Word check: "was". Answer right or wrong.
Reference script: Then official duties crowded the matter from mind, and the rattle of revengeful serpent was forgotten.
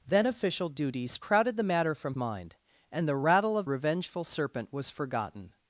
right